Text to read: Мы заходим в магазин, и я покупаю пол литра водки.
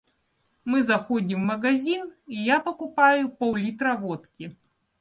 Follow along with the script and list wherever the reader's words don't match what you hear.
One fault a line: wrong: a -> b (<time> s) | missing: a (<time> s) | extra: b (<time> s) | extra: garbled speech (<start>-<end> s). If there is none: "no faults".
no faults